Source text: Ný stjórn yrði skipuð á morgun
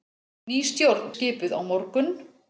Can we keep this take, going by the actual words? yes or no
no